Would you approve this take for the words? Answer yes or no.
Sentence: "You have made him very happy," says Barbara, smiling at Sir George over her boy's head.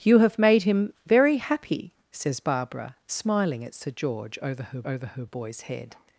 no